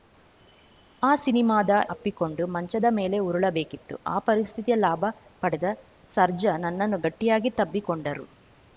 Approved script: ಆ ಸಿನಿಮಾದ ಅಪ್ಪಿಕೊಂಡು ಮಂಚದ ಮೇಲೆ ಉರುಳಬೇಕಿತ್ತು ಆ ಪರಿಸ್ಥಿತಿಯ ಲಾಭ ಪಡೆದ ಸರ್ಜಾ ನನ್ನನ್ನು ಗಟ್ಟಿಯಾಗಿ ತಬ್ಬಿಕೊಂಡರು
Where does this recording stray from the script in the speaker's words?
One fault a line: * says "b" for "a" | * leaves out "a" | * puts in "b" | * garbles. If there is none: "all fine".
all fine